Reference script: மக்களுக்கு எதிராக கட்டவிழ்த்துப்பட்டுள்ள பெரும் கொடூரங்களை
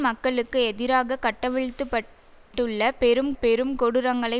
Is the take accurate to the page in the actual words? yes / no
no